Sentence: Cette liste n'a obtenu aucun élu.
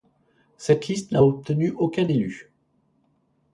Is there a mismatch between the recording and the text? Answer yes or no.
no